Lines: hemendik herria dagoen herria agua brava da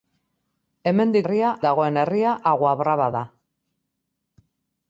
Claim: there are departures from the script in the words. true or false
false